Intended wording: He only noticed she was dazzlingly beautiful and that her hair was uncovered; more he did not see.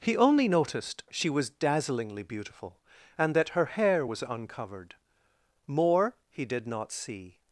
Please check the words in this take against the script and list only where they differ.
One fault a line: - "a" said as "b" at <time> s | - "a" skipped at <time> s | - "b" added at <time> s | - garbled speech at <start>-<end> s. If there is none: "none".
none